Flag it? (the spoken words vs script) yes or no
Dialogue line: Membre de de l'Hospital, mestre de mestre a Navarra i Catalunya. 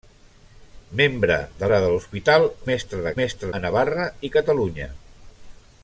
no